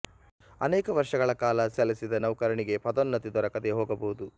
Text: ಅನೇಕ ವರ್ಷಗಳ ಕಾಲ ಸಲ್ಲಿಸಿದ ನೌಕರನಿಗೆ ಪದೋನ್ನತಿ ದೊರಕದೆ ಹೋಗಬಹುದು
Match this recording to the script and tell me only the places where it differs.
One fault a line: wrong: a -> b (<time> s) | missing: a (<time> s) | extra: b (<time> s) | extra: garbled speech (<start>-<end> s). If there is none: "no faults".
no faults